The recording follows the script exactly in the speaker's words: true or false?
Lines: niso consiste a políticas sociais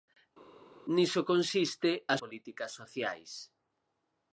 true